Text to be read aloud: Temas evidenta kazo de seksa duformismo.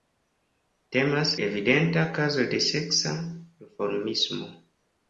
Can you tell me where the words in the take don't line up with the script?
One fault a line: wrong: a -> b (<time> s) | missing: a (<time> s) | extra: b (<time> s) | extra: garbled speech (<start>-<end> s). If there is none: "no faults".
no faults